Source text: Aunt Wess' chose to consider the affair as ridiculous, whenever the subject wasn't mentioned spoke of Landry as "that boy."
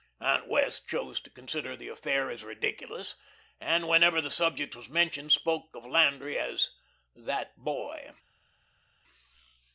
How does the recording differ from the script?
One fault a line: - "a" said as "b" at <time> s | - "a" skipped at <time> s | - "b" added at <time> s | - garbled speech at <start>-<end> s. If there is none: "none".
- "and" added at 3.6 s
- "wasn't" said as "was" at 4.8 s